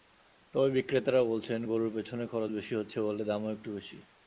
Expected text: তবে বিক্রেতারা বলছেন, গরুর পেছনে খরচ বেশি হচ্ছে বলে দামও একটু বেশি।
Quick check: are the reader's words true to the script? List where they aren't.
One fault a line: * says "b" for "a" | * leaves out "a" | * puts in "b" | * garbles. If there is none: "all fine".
all fine